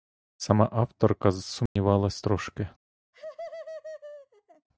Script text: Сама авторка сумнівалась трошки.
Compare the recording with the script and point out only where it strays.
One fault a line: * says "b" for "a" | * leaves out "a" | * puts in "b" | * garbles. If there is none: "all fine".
all fine